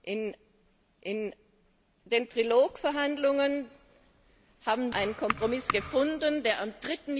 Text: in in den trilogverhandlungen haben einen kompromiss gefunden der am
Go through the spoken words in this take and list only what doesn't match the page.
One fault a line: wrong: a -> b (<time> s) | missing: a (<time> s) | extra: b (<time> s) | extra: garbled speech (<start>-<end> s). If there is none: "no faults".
no faults